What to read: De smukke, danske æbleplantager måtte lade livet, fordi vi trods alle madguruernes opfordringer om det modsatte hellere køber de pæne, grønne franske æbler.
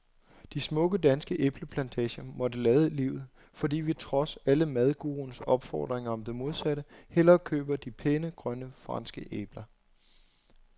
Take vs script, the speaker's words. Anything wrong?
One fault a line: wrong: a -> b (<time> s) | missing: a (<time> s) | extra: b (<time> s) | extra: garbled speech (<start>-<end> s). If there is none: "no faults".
no faults